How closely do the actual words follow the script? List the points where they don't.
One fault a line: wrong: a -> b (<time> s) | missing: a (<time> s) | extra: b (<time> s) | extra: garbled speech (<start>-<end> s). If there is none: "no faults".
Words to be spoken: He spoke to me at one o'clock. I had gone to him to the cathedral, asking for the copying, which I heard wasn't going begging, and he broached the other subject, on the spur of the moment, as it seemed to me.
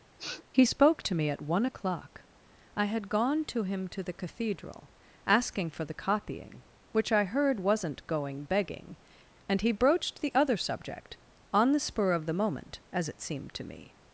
no faults